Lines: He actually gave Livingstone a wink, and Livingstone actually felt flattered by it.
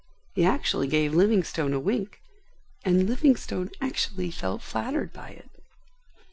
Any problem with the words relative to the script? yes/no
no